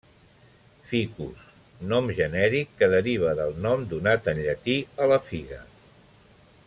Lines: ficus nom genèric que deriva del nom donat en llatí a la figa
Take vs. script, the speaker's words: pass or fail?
pass